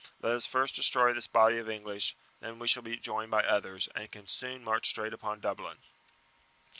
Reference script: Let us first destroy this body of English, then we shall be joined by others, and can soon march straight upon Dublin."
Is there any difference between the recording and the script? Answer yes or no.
no